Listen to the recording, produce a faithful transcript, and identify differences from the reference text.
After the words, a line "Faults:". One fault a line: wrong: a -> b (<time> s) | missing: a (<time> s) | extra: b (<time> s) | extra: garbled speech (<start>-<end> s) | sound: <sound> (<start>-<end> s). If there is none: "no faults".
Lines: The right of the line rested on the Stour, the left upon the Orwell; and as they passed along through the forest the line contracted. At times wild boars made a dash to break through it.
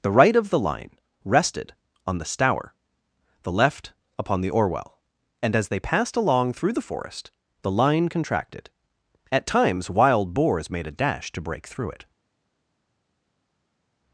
The right of the line rested on the Stour, the left upon the Orwell; and as they passed along through the forest the line contracted. At times wild boars made a dash to break through it.
Faults:
no faults